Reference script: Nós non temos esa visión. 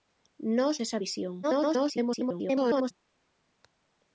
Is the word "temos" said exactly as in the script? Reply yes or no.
no